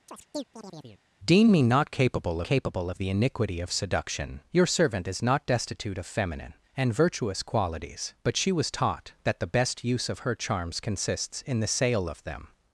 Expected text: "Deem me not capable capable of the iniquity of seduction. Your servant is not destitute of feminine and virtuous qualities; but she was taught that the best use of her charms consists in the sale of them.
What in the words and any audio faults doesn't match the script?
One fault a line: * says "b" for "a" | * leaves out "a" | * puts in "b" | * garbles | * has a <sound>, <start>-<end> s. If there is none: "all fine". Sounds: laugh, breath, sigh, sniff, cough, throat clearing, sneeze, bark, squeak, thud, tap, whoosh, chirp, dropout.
* has a chirp, 0.1-1.0 s